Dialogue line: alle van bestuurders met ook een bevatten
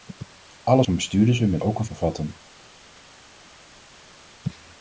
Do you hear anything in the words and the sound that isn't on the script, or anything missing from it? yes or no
no